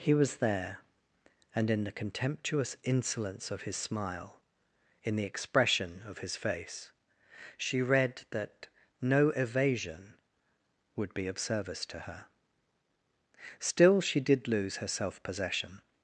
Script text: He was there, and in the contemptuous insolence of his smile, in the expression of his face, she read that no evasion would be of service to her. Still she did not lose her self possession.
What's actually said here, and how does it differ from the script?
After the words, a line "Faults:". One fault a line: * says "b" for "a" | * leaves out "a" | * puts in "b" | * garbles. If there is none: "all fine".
He was there, and in the contemptuous insolence of his smile, in the expression of his face, she read that no evasion would be of service to her. Still she did lose her self possession.
Faults:
* leaves out "not"